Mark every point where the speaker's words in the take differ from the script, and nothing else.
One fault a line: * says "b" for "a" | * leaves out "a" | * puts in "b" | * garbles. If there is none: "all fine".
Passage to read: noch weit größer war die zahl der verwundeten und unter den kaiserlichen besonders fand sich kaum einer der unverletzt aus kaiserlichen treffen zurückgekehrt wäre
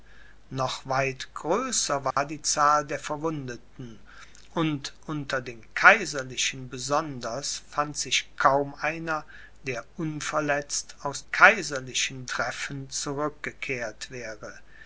all fine